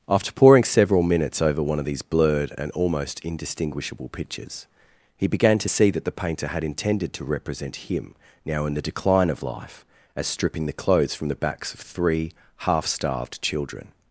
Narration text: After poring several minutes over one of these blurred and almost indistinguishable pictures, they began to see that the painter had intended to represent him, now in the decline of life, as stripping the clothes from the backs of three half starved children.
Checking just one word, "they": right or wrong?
wrong